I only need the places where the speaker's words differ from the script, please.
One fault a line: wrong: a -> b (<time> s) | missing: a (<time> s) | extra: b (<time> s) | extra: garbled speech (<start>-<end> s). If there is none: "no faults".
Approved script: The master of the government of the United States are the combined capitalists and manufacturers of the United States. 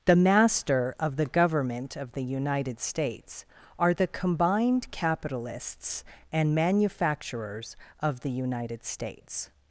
no faults